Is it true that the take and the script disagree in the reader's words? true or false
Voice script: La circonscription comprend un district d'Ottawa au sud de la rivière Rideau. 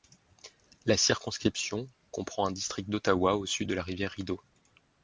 false